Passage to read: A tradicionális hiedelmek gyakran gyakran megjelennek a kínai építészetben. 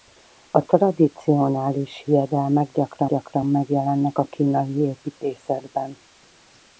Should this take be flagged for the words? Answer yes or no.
no